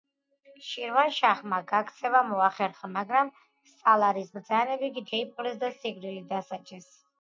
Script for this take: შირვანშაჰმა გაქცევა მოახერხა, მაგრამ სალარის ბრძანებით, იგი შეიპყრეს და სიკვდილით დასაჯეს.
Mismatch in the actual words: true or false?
true